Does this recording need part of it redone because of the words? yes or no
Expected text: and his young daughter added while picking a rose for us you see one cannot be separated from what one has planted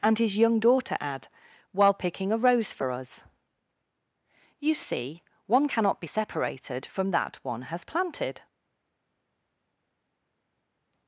yes